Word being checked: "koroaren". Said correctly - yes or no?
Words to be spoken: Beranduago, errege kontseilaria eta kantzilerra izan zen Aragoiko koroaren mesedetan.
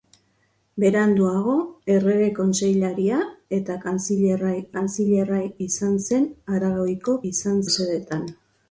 no